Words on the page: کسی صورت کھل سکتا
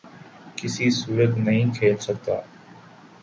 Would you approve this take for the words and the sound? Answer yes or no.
no